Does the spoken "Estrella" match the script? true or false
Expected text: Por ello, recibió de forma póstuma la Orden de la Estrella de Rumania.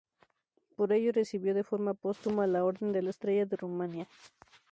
true